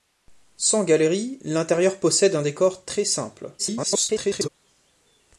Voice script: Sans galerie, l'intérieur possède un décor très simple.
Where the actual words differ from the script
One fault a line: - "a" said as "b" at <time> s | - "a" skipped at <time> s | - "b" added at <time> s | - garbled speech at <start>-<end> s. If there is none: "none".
- garbled speech at 3.6-4.5 s